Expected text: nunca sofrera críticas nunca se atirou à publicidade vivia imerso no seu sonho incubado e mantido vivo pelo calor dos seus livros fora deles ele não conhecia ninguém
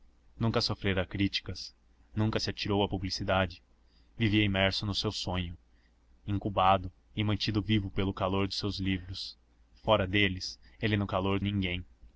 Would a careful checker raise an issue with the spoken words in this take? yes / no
yes